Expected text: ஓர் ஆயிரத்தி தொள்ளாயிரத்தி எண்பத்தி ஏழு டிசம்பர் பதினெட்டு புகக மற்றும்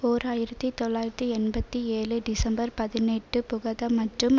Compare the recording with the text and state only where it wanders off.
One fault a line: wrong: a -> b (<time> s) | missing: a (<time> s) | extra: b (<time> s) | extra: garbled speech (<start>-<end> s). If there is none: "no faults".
no faults